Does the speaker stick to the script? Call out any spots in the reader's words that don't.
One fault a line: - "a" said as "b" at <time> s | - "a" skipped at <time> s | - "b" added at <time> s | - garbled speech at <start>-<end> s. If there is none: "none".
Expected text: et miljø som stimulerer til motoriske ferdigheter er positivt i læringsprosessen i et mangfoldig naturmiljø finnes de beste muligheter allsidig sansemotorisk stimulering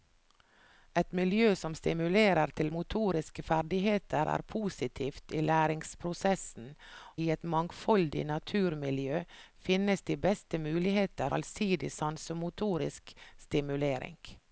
none